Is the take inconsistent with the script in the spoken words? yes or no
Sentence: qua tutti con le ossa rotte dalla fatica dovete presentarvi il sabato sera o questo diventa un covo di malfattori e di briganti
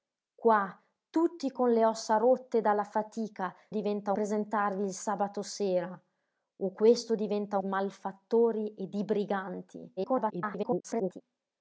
yes